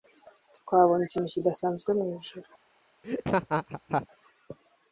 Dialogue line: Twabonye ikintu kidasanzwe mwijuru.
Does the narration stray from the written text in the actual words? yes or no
no